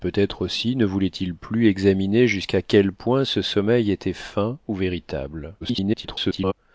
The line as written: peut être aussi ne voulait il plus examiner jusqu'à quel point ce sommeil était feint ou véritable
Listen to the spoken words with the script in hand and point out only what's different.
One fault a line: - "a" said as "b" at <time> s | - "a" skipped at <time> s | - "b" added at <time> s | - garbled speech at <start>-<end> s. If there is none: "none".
- garbled speech at 5.6-6.5 s